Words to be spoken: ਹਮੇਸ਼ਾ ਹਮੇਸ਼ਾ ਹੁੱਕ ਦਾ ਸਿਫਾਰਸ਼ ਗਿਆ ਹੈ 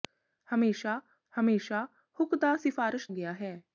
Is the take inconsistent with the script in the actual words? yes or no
no